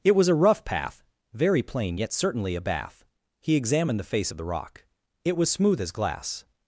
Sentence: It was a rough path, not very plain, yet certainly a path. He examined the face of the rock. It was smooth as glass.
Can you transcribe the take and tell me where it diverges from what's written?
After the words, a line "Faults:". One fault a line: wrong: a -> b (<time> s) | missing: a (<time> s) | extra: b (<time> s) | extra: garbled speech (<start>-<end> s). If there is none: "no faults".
It was a rough path, very plain, yet certainly a bath. He examined the face of the rock. It was smooth as glass.
Faults:
missing: not (1.0 s)
wrong: path -> bath (2.6 s)